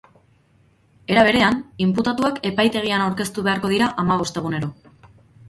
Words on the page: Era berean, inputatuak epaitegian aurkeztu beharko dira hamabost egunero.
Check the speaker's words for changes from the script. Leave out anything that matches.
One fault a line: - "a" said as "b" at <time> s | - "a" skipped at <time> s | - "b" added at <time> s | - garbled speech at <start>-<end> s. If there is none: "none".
none